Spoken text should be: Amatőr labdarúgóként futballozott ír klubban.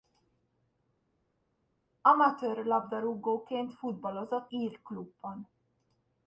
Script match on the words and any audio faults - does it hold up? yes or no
yes